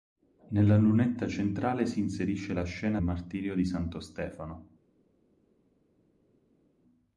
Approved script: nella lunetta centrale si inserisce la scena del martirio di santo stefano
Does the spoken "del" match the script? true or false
false